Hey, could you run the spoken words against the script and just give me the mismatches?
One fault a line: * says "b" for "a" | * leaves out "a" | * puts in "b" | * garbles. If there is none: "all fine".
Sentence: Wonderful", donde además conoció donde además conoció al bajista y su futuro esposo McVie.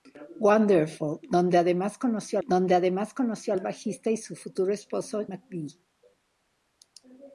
all fine